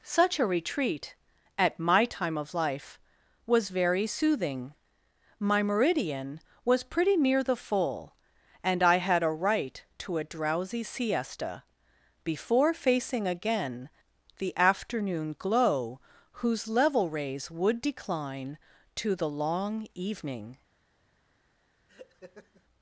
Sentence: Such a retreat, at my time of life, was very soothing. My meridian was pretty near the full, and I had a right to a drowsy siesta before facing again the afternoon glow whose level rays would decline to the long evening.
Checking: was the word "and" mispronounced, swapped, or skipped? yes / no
no